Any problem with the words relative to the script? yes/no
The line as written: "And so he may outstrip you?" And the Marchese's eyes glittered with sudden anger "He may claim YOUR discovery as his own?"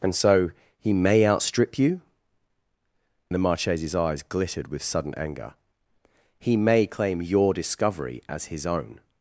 yes